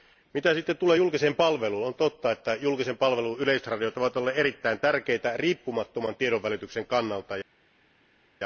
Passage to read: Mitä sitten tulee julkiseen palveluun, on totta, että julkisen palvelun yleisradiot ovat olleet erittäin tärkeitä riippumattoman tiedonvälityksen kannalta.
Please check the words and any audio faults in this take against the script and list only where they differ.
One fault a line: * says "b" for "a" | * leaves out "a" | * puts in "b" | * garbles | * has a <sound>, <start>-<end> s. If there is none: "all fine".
all fine